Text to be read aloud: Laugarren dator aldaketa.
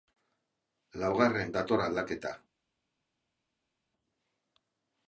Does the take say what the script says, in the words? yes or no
yes